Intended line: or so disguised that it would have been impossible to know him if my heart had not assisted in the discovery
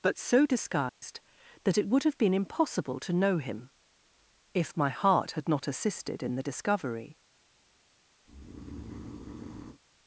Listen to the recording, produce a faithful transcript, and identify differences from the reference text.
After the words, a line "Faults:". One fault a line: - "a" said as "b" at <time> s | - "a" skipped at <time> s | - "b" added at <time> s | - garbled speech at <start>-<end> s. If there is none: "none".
but so disguised that it would have been impossible to know him if my heart had not assisted in the discovery
Faults:
- "or" said as "but" at 0.0 s